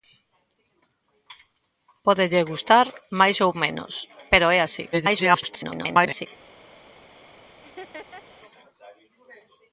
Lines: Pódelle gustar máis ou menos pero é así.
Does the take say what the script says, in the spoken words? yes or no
no